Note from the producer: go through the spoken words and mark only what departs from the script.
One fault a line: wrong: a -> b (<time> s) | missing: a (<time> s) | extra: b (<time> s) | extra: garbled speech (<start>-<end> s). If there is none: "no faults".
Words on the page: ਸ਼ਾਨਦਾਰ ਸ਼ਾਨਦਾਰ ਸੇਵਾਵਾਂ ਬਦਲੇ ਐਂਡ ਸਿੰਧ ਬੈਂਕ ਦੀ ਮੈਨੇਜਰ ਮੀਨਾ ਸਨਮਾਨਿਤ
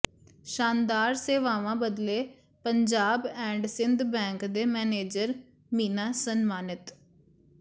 missing: ਸ਼ਾਨਦਾਰ (1.1 s)
extra: ਪੰਜਾਬ (2.6 s)
wrong: ਦੀ -> ਦੇ (4.5 s)